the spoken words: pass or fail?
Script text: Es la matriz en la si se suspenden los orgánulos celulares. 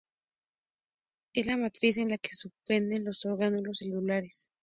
fail